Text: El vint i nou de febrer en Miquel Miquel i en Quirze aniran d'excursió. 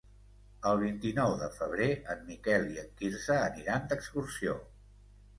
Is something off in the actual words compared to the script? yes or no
yes